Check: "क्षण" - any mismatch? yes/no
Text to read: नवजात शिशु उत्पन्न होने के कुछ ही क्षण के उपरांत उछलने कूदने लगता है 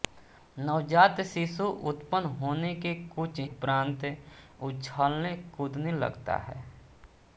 yes